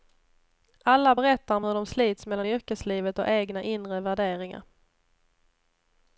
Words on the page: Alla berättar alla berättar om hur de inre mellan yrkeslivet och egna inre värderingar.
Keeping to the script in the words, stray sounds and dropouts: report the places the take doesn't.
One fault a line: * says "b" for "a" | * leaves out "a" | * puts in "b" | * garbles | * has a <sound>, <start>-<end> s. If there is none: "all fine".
* leaves out "alla berättar"
* says "slits" for "inre"